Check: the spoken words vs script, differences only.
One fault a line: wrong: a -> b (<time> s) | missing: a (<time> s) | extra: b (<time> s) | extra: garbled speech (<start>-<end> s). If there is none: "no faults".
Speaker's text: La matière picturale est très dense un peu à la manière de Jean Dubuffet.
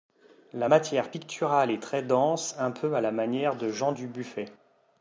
no faults